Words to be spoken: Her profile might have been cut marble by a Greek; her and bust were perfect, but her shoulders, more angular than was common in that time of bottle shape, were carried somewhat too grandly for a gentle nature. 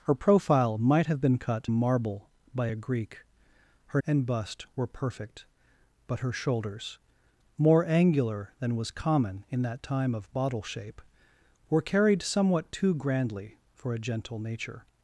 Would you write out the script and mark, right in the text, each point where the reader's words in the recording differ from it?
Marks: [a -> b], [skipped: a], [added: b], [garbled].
Her profile might have been cut marble by a Greek; her and bust were perfect, but her shoulders, more angular than was common in that time of bottle shape, were carried somewhat too grandly for a gentle nature.